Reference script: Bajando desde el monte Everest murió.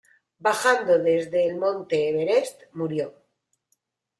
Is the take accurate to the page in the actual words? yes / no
yes